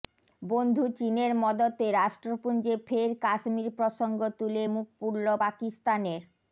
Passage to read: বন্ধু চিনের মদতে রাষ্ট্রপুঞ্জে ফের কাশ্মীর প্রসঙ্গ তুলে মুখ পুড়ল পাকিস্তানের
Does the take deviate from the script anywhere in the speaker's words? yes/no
no